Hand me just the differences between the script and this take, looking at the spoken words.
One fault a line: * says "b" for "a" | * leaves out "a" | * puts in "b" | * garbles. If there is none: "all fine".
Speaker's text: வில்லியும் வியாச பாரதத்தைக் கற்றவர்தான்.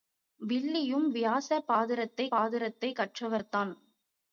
* puts in "பாரதத்தைக்"